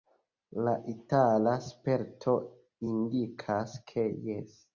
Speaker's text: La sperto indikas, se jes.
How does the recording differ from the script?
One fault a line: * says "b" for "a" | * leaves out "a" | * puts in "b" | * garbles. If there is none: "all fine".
* puts in "itala"
* says "ke" for "se"